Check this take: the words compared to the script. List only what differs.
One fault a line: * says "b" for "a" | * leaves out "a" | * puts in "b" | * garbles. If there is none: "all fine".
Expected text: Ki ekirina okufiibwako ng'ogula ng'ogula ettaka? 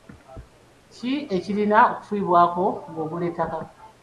* leaves out "ng'ogula"